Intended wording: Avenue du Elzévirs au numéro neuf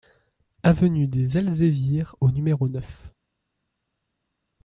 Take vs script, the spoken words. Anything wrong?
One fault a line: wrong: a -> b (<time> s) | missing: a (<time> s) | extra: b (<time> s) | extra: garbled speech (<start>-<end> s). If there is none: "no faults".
wrong: du -> des (1.1 s)